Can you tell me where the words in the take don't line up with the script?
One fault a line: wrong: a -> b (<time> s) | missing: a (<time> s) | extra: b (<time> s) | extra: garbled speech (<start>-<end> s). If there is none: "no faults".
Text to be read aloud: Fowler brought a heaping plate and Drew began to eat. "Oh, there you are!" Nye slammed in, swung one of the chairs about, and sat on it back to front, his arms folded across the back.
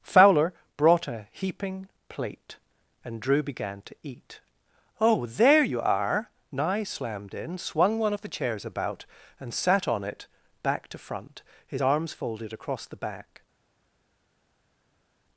no faults